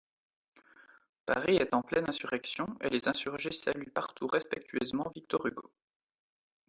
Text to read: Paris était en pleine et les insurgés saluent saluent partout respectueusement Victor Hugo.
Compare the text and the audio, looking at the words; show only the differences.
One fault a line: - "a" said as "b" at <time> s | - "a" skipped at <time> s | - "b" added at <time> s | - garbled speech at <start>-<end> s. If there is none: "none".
- "était" said as "est" at 1.6 s
- "insurrection" added at 2.1 s
- "saluent" skipped at 3.9 s